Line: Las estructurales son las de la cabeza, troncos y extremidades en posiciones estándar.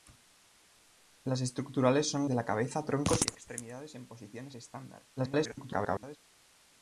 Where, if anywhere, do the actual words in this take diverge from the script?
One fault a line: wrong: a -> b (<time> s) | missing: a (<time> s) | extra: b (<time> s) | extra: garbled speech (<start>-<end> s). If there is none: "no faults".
missing: las (2.2 s)
extra: garbled speech (5.2-6.2 s)